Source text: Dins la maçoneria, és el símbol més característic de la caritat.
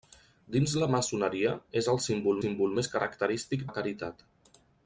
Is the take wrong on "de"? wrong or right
wrong